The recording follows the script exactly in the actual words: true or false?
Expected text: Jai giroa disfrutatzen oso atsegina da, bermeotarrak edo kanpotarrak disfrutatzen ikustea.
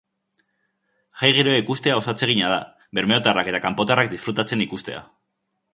false